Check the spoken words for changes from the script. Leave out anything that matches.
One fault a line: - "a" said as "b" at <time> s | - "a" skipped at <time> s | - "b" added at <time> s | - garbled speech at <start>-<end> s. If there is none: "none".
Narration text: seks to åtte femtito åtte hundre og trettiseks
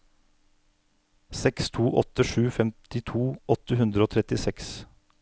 - "sju" added at 2.3 s